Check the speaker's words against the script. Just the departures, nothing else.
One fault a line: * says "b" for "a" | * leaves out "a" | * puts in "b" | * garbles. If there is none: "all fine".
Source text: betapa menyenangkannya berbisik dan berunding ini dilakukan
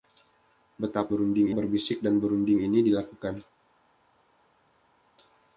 * says "berunding" for "menyenangkannya"